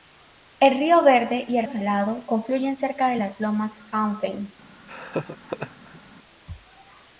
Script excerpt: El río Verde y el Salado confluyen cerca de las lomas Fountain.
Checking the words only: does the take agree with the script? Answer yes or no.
yes